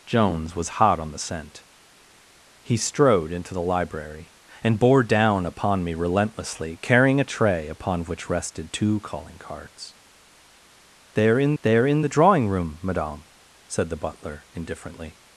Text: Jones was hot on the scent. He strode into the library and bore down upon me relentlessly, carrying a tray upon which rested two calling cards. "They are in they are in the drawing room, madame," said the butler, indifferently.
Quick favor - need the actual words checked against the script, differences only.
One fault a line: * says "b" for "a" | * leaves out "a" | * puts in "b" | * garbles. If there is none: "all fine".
all fine